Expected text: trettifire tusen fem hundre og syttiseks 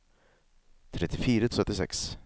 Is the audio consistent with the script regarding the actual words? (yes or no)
no